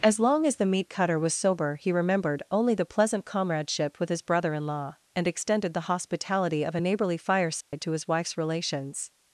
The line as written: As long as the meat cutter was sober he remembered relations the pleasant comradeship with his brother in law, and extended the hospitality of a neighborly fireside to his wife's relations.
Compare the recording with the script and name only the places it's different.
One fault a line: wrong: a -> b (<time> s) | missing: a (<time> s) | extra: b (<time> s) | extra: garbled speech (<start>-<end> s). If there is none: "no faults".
wrong: relations -> only (2.5 s)